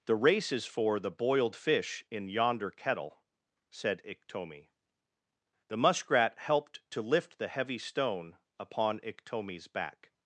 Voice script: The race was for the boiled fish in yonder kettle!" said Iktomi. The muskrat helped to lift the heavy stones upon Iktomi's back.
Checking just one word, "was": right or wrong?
wrong